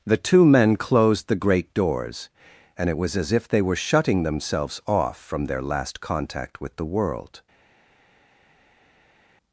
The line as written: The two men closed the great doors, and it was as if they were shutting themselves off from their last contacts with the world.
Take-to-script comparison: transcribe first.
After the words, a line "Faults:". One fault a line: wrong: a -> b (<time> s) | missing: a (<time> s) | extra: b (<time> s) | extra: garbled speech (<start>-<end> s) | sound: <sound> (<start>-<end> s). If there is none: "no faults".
The two men closed the great doors, and it was as if they were shutting themselves off from their last contact with the world.
Faults:
wrong: contacts -> contact (6.0 s)